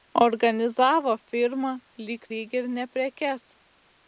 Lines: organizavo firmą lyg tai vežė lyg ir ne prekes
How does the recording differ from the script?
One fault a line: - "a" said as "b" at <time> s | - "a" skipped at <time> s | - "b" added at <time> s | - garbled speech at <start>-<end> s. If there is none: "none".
- "tai vežė" skipped at 2.3 s